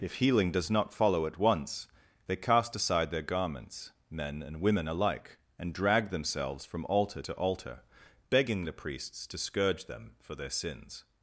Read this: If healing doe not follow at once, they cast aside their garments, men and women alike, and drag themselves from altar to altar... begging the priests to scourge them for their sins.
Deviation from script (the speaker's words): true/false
true